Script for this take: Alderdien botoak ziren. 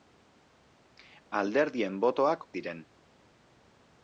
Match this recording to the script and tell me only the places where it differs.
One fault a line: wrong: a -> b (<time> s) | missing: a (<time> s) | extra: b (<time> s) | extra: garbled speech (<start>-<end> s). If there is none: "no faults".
no faults